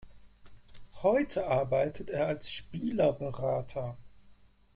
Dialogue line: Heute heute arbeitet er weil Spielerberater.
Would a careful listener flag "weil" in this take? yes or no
yes